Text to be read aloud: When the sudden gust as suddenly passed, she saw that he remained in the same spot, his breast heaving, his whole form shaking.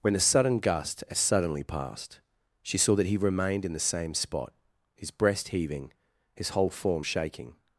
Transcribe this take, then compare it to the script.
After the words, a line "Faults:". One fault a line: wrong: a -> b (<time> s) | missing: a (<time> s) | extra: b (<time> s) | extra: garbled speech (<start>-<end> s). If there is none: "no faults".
When the sudden gust as suddenly passed, she saw that he remained in the same spot, his breast heaving, his whole form shaking.
Faults:
no faults